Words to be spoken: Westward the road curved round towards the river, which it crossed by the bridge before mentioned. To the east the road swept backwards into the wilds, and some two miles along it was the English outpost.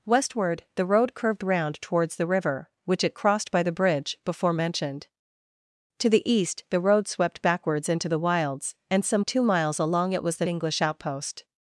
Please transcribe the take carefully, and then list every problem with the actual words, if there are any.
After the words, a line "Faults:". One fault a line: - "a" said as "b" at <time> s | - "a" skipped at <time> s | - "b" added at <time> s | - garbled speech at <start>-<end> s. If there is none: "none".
Westward the road curved round towards the river, which it crossed by the bridge before mentioned. To the east the road swept backwards into the wilds, and some two miles along it was the English outpost.
Faults:
none